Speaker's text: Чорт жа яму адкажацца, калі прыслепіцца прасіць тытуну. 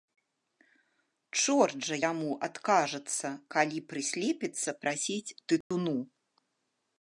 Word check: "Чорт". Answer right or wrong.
right